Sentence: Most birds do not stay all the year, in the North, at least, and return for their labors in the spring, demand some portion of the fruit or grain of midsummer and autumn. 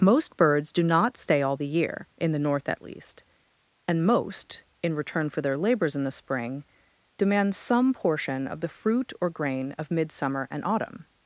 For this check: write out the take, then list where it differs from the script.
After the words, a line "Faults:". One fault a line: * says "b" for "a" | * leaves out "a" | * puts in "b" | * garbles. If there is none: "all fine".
Most birds do not stay all the year, in the North, at least, and most, in return for their labors in the spring, demand some portion of the fruit or grain of midsummer and autumn.
Faults:
* puts in "most in"